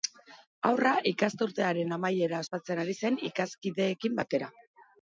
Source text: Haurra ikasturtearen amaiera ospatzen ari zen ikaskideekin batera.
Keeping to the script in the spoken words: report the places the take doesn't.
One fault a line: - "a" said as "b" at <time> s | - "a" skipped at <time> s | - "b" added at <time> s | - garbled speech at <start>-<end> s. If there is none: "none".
none